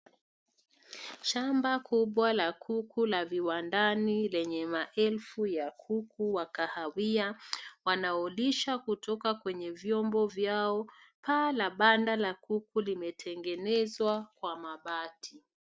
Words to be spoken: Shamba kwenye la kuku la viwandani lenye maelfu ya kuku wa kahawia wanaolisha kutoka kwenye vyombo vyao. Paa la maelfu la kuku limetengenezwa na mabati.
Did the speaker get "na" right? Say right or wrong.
wrong